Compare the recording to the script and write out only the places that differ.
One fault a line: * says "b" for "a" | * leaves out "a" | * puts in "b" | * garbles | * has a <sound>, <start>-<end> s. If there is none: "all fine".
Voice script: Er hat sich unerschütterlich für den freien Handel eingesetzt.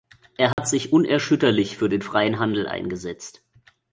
* has a dropout, 0.5-0.6 s